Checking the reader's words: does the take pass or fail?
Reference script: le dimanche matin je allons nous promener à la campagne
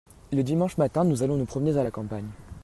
fail